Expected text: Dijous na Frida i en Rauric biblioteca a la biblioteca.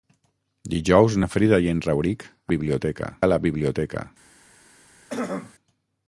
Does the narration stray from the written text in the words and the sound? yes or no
yes